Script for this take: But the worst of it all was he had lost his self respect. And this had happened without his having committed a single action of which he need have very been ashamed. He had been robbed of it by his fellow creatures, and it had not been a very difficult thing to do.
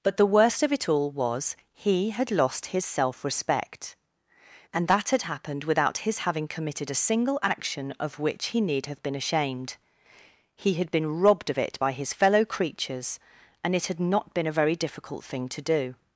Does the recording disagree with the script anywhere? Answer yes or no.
yes